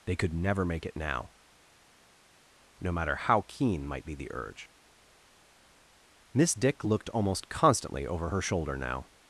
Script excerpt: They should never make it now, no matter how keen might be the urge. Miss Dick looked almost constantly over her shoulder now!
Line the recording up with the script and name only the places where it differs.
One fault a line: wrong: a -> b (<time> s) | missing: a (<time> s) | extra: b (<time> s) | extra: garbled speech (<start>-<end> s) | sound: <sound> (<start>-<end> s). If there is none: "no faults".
wrong: should -> could (0.1 s)